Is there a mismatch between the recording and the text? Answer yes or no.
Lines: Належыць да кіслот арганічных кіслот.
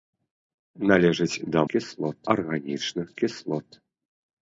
no